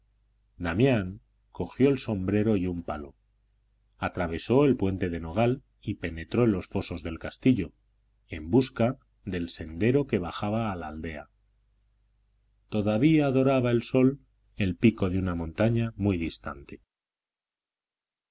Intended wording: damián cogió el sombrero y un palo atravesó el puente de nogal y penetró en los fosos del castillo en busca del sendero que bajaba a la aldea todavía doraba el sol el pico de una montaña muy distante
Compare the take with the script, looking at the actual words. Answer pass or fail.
pass